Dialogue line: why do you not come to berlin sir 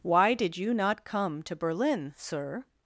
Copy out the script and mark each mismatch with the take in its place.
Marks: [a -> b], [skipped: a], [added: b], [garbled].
why [do -> did] you not come to berlin sir